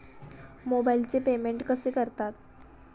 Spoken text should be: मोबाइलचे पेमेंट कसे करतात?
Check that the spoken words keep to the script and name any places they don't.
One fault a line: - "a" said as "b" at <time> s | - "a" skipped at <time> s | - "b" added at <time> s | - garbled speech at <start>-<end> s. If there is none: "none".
none